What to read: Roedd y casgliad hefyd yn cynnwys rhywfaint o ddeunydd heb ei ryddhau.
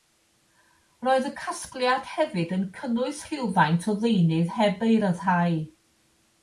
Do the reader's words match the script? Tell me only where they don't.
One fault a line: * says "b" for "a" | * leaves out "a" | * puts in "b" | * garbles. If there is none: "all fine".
all fine